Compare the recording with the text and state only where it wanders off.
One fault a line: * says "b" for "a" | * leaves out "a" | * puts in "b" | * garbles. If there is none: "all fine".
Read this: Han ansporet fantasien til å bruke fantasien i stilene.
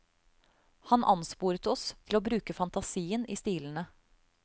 * says "oss" for "fantasien"